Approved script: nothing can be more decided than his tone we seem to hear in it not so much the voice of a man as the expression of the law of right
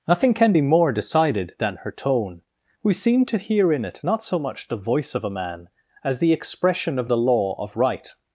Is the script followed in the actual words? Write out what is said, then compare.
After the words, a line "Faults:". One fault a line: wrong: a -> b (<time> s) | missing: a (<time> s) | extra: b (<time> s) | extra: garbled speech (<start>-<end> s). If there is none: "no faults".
nothing can be more decided than her tone we seem to hear in it not so much the voice of a man as the expression of the law of right
Faults:
wrong: his -> her (1.8 s)